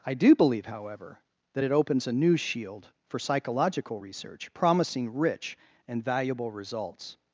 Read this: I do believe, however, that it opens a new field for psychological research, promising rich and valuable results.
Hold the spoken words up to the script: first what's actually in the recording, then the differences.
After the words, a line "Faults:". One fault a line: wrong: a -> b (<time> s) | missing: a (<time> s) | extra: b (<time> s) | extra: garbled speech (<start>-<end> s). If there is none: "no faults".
I do believe, however, that it opens a new shield for psychological research, promising rich and valuable results.
Faults:
wrong: field -> shield (2.4 s)